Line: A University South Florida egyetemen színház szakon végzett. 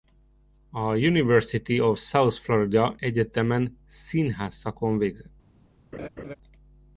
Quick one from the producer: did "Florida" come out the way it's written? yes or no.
yes